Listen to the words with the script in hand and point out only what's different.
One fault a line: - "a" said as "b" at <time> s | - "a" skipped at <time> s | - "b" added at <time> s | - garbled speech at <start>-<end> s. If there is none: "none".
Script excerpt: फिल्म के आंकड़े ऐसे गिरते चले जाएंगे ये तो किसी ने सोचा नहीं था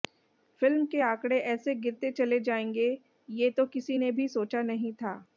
- "भी" added at 4.1 s